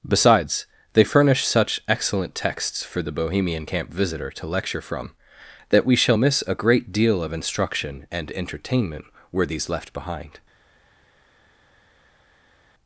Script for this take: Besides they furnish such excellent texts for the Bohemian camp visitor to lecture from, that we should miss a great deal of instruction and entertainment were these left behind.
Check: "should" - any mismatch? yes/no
yes